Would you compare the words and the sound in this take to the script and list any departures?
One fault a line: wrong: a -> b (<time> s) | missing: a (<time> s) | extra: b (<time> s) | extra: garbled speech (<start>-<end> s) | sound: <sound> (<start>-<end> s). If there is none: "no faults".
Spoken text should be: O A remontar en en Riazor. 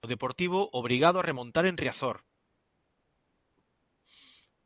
extra: Deportivo obrigado (0.1 s)
missing: en (1.8 s)